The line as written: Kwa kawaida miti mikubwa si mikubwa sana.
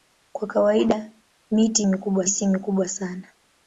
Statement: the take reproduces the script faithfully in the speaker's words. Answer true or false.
true